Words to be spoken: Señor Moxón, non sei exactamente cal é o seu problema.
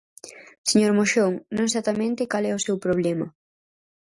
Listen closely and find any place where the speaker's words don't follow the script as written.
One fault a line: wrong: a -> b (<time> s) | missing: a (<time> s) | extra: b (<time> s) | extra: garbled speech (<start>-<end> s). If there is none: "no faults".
missing: sei (1.7 s)